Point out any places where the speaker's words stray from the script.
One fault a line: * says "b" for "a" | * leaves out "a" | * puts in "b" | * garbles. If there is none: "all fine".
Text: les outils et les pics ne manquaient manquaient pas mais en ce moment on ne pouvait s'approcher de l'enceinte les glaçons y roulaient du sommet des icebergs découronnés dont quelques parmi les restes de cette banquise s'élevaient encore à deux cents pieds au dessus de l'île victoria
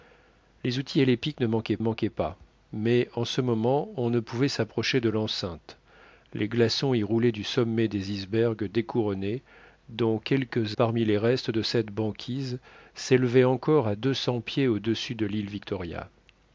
all fine